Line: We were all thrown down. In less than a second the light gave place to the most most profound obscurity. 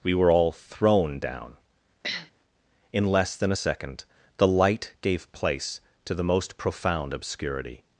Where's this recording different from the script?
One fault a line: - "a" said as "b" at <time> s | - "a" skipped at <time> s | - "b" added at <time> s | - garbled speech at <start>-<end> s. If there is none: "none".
- "most" skipped at 6.6 s